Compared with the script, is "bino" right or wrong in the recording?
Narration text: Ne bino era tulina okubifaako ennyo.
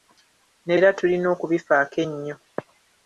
wrong